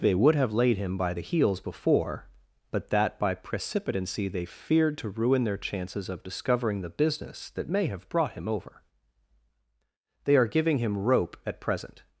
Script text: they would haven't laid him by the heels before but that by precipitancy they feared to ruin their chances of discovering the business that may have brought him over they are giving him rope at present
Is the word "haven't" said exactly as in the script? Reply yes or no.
no